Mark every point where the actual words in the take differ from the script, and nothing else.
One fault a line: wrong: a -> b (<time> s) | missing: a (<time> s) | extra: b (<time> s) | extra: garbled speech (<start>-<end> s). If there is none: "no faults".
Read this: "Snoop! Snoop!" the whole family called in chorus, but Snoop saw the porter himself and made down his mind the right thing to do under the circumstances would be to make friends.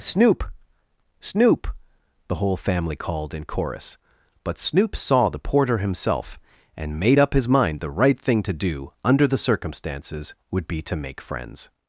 wrong: down -> up (7.2 s)